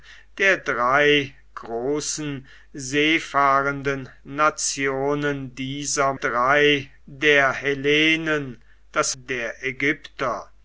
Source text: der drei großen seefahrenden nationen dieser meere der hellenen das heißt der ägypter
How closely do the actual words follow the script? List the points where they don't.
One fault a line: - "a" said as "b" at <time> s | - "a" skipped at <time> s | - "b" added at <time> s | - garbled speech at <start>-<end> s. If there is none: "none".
- "meere" said as "drei" at 6.1 s
- "heißt" skipped at 9.1 s